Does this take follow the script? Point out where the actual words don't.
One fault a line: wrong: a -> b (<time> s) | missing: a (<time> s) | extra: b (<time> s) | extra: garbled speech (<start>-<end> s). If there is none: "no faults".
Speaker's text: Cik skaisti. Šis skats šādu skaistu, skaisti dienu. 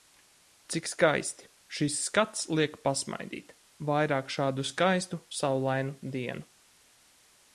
extra: liek pasmaidīt vairāk (2.6 s)
wrong: skaisti -> saulainu (5.4 s)